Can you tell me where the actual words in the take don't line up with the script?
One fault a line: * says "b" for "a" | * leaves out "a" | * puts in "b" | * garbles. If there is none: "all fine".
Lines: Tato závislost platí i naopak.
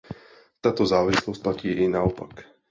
all fine